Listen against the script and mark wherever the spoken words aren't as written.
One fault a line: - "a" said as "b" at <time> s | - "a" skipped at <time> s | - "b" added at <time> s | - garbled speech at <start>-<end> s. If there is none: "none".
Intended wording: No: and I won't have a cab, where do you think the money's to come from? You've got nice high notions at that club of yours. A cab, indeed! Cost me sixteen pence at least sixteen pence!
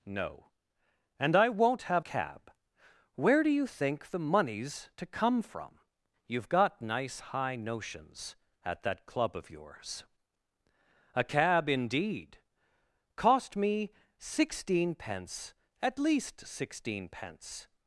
- "a" skipped at 2.0 s